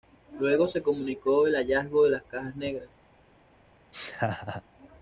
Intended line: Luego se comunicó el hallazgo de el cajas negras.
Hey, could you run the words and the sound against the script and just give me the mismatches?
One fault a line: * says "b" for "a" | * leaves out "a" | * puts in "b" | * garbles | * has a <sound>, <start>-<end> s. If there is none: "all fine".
* says "las" for "el"
* has a laugh, 3.9-4.6 s